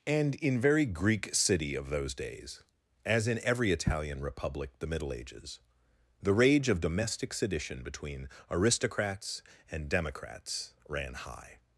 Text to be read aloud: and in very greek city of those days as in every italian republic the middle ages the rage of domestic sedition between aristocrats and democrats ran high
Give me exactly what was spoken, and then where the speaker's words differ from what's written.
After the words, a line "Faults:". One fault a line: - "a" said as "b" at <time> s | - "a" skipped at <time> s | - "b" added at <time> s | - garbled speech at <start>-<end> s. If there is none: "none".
and in very greek city of those days as in every italian republic the middle ages the rage of domestic sedition between aristocrats and democrats ran high
Faults:
none